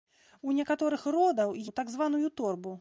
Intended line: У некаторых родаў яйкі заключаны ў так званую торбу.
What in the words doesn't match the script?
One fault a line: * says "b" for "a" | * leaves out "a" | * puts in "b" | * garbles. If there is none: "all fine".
* leaves out "яйкі заключаны"